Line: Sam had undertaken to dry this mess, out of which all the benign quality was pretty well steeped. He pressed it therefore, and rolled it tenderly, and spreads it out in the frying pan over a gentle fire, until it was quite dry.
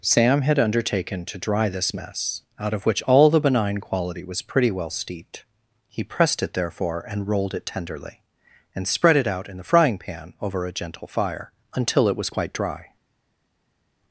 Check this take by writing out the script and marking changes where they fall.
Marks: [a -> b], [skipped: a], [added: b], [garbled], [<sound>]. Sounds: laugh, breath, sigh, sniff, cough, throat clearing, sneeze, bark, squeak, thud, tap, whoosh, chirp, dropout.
Sam had undertaken to dry this mess, out of which all the benign quality was pretty well steeped. He pressed it therefore, and rolled it tenderly, and [spreads -> spread] it out in the frying pan over a gentle fire, until it was quite dry.